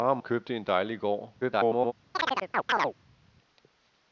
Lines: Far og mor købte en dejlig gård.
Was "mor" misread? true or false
true